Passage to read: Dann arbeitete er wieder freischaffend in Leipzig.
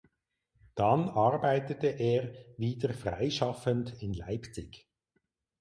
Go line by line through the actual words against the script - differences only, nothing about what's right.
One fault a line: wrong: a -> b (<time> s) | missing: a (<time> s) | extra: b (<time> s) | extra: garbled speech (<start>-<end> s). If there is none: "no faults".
no faults